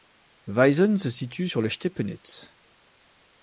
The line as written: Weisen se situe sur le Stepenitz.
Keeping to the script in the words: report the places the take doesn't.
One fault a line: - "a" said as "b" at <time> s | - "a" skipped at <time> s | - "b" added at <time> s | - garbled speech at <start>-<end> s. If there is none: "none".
none